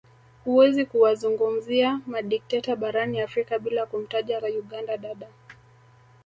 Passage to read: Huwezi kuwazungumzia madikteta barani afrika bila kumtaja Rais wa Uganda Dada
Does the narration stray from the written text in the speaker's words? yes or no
yes